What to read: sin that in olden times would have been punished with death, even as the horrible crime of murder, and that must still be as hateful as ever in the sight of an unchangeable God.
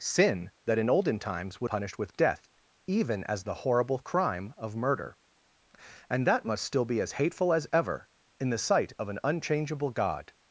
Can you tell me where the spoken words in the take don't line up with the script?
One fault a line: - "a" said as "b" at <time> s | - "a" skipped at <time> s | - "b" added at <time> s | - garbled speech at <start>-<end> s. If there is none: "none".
- "have been" skipped at 1.7 s